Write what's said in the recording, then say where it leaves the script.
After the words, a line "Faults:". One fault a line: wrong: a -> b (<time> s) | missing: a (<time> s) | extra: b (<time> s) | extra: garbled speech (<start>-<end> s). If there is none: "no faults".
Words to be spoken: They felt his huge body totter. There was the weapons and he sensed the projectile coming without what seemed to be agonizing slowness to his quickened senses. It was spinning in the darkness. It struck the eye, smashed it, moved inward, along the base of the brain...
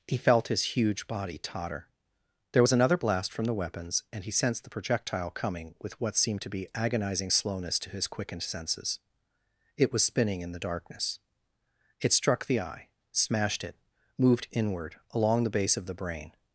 He felt his huge body totter. There was another blast from the weapons and he sensed the projectile coming with what seemed to be agonizing slowness to his quickened senses. It was spinning in the darkness. It struck the eye, smashed it, moved inward, along the base of the brain...
Faults:
wrong: They -> He (0.1 s)
extra: another blast from (2.7 s)
wrong: without -> with (5.8 s)